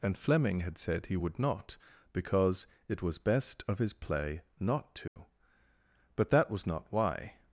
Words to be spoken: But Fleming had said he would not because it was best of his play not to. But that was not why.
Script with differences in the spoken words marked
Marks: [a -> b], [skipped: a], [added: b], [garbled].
[But -> And] Fleming had said he would not because it was best of his play not to. But that was not why.